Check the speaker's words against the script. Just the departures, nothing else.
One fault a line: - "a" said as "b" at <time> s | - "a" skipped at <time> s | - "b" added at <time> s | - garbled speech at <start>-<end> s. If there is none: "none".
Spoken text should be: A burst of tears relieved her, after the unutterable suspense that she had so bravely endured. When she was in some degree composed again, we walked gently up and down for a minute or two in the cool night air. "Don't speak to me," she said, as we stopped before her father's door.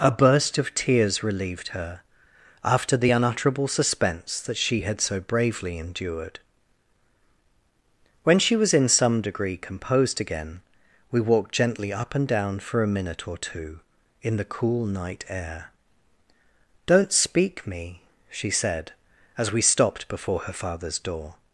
- "to" skipped at 17.7 s